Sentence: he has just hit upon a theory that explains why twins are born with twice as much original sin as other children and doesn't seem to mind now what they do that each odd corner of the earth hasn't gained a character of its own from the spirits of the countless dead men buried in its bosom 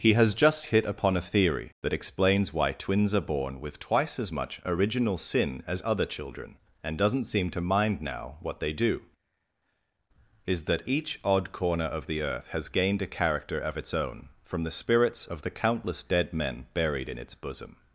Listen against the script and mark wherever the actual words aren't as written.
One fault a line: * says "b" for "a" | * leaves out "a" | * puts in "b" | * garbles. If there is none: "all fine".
* puts in "is"
* says "has" for "hasn't"